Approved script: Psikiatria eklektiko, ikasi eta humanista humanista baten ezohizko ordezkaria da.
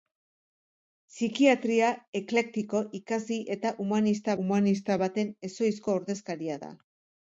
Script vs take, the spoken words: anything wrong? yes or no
no